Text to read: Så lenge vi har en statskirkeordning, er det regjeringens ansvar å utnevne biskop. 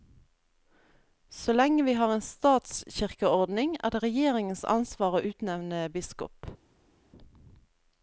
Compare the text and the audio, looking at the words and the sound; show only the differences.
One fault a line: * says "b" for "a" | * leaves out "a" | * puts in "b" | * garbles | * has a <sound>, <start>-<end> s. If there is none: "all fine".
all fine